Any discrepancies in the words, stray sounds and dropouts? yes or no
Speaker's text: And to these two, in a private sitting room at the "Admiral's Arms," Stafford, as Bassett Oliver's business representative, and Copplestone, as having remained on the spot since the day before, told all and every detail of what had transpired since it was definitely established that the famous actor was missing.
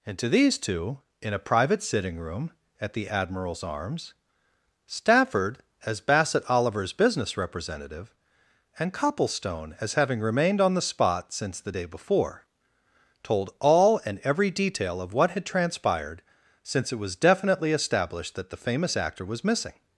no